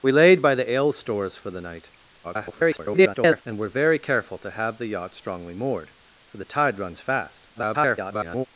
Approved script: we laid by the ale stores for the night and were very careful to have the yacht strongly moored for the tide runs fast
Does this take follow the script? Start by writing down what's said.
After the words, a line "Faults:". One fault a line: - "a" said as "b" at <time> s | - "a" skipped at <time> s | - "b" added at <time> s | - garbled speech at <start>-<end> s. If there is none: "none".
we laid by the ale stores for the night [garbled] and were very careful to have the yacht strongly moored for the tide runs fast [garbled]
Faults:
- garbled speech at 2.2-3.4 s
- garbled speech at 7.6-8.5 s